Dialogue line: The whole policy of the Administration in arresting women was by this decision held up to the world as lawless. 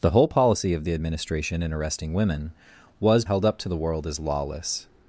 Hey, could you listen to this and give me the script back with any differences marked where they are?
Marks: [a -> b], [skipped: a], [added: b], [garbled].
The whole policy of the Administration in arresting women was [skipped: by this decision] held up to the world as lawless.